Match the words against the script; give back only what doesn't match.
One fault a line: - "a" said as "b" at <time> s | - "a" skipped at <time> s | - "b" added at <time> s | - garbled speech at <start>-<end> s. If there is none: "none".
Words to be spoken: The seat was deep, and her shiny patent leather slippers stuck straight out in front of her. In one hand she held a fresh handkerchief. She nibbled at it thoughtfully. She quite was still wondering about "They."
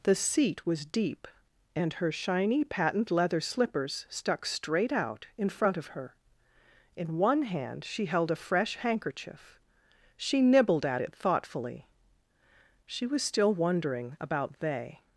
- "quite" skipped at 13.1 s